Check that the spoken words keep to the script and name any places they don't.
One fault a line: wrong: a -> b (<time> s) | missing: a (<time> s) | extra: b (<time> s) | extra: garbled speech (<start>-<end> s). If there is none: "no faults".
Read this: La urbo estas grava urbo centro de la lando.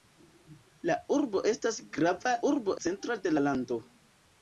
no faults